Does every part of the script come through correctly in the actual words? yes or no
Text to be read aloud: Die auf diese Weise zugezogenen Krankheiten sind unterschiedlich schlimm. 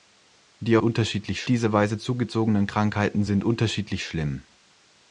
no